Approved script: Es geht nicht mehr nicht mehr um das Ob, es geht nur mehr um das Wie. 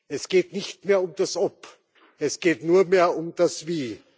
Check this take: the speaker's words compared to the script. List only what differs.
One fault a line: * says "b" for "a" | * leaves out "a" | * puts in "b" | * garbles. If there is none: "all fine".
* leaves out "nicht mehr"